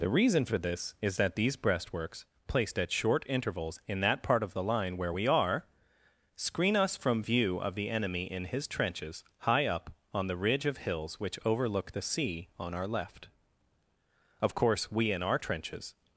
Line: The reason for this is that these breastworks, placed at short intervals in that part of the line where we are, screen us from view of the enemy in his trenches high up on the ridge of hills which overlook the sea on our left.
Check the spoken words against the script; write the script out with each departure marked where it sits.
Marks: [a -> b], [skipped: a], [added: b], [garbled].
The reason for this is that these breastworks, placed at short intervals in that part of the line where we are, screen us from view of the enemy in his trenches high up on the ridge of hills which overlook the sea on our left. [added: Of course we in our trenches]